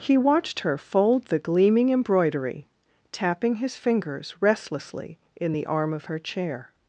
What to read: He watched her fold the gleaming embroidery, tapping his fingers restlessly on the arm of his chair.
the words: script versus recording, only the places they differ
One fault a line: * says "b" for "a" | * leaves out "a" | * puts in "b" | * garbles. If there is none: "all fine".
* says "in" for "on"
* says "her" for "his"